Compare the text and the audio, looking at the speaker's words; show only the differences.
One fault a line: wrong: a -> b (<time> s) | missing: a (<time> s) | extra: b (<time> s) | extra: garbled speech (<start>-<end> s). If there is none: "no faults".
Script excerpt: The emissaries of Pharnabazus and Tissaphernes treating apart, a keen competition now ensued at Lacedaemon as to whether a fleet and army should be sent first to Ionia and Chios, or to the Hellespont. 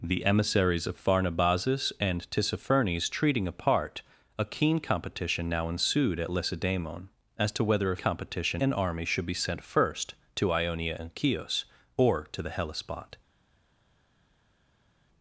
wrong: fleet -> competition (7.9 s)